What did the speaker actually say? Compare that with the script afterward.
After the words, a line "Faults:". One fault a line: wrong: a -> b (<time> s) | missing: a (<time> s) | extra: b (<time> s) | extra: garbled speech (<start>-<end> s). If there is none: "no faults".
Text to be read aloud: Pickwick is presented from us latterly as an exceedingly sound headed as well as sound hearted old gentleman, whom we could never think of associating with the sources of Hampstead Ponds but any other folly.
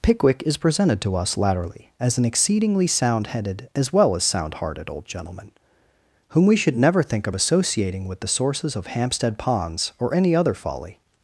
Pickwick is presented to us latterly as an exceedingly sound headed as well as sound hearted old gentleman, whom we should never think of associating with the sources of Hampstead Ponds or any other folly.
Faults:
wrong: from -> to (1.0 s)
wrong: could -> should (6.5 s)
wrong: but -> or (10.0 s)